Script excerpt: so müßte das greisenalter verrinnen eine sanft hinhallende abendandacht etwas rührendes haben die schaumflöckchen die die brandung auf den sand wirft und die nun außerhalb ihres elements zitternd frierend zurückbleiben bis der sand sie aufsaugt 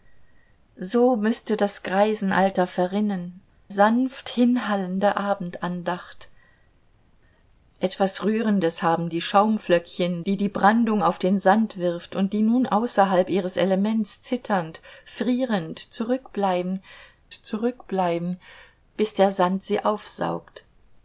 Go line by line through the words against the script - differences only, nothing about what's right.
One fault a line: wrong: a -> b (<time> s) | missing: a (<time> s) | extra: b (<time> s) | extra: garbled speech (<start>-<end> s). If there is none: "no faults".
missing: eine (3.4 s)
extra: zurückbleiben (17.3 s)